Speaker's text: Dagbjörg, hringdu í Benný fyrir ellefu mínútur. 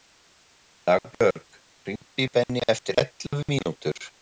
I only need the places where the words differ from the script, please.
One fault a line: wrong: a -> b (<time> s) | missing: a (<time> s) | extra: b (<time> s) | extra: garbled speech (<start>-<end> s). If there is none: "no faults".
wrong: fyrir -> eftir (2.8 s)